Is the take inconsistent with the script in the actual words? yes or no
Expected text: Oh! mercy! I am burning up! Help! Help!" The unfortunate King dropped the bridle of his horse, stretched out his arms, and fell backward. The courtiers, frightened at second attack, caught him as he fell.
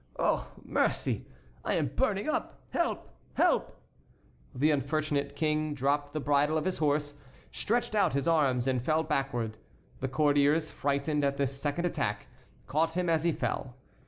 yes